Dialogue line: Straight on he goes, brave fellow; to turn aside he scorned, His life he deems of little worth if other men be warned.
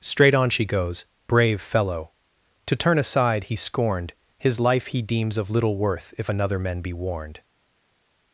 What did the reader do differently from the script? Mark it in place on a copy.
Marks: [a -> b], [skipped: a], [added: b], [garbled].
Straight on [he -> she] goes, brave fellow; to turn aside he scorned, His life he deems of little worth if [other -> another] men be warned.